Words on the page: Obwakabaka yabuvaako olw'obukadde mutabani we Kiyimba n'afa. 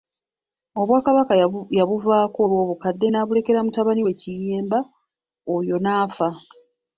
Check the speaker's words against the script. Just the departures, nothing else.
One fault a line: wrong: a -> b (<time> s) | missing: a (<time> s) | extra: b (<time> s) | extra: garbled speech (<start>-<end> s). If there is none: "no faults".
extra: n'abulekera (3.1 s)
extra: oyo (5.5 s)